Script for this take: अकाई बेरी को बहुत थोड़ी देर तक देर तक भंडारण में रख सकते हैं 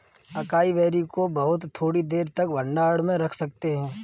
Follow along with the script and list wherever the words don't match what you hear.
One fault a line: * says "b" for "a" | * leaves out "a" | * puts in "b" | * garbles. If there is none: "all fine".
* leaves out "देर तक"